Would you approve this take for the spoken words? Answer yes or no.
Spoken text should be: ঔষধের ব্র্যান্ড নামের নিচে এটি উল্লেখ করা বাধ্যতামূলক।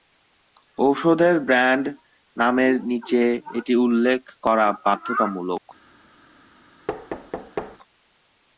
yes